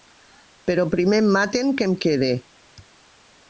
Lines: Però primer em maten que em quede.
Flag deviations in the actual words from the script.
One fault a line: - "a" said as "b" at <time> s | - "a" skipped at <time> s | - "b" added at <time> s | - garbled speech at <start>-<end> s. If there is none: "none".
none